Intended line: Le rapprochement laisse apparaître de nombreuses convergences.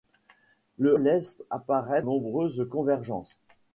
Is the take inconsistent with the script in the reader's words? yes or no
yes